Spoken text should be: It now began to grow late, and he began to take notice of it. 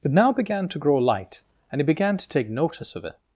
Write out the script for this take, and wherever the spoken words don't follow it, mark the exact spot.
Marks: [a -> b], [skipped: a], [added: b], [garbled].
It now began to grow [late, -> light] and he began to take notice of it.